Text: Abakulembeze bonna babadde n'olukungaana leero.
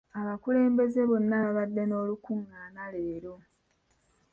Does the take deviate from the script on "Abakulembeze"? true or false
false